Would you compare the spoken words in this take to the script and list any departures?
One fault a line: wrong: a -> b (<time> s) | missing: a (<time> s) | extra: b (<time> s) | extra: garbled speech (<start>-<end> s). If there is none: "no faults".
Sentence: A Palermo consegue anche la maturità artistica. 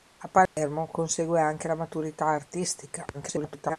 extra: garbled speech (3.1-3.8 s)